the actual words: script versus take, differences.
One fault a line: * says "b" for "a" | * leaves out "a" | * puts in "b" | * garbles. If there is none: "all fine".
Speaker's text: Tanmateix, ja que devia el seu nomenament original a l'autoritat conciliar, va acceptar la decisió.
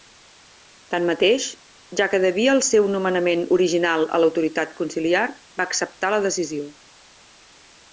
all fine